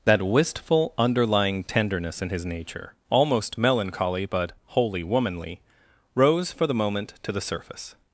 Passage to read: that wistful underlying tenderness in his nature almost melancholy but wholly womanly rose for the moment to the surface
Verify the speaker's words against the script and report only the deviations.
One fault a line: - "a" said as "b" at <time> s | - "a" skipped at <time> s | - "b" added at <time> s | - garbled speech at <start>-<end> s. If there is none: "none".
none